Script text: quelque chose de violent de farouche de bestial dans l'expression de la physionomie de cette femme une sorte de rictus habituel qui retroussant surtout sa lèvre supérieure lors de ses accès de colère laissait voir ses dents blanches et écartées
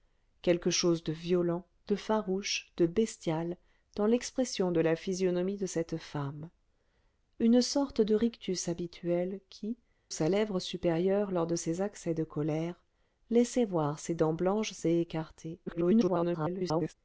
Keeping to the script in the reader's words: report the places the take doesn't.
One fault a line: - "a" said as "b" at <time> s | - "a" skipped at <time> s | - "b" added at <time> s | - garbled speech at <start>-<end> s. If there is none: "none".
- "retroussant surtout" skipped at 9.8 s
- garbled speech at 15.7-16.9 s